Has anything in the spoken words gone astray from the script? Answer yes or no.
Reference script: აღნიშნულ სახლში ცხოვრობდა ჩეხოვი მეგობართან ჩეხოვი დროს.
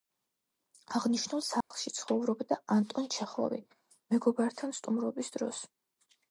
yes